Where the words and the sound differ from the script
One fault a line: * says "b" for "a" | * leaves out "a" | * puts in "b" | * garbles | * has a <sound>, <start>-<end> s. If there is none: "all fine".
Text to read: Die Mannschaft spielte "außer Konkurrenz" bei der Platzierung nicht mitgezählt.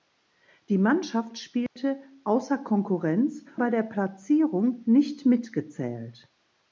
* has a dropout, 1.7-1.8 s